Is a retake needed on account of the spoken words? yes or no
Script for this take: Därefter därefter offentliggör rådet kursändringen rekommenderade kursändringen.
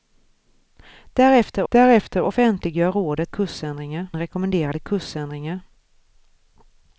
no